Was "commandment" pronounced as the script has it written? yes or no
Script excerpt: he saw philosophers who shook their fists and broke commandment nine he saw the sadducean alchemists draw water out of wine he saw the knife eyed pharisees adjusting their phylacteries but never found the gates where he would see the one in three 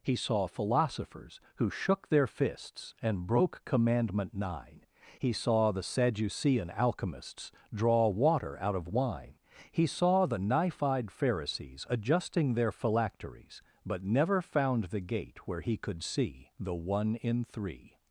yes